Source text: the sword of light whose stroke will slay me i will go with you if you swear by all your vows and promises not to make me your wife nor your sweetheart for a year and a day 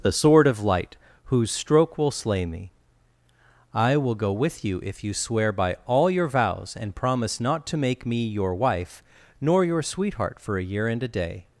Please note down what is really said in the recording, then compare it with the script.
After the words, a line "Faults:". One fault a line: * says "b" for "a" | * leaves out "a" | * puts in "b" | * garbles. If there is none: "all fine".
the sword of light whose stroke will slay me i will go with you if you swear by all your vows and promise not to make me your wife nor your sweetheart for a year and a day
Faults:
* says "promise" for "promises"